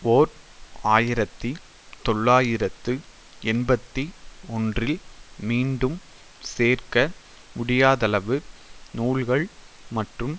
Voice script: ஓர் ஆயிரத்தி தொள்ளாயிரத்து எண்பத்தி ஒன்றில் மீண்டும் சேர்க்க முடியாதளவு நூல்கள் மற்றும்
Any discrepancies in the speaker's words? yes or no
no